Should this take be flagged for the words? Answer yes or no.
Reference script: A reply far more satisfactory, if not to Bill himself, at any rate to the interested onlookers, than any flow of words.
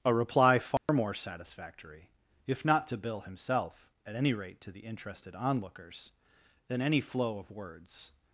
no